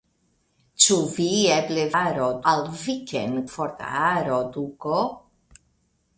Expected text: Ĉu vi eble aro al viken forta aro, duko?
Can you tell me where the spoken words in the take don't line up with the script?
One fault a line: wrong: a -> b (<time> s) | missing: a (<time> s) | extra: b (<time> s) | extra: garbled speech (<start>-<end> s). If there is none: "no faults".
no faults